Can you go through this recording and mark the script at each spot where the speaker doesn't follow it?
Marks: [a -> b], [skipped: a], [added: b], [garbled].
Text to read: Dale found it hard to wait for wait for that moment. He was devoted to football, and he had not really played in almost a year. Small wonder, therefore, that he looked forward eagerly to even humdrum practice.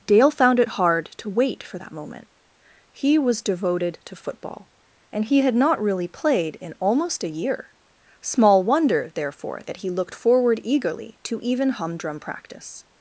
Dale found it hard to wait for [skipped: wait for] that moment. He was devoted to football, and he had not really played in almost a year. Small wonder, therefore, that he looked forward eagerly to even humdrum practice.